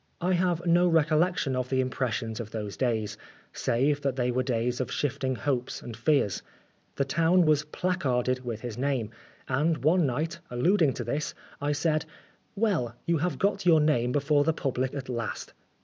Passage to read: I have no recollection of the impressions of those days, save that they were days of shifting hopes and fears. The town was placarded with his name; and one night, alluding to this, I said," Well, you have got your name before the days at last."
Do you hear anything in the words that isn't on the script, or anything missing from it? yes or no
yes